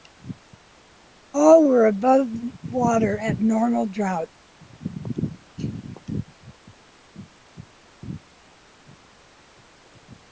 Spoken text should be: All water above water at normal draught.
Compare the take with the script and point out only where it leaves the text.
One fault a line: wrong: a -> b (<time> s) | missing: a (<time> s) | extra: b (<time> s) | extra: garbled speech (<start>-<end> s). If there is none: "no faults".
wrong: water -> were (1.6 s)